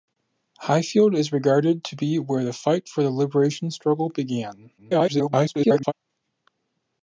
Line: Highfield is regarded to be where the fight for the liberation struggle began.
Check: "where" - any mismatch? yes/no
no